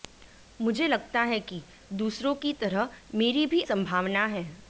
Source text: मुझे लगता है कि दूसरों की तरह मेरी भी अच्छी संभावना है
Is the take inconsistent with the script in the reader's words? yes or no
yes